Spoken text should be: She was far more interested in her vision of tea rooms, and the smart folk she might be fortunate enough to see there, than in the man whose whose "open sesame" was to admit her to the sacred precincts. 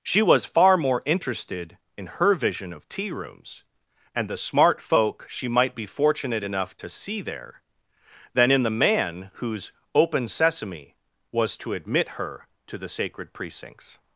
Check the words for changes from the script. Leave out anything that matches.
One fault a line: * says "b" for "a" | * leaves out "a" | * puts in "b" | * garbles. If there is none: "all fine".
* leaves out "whose"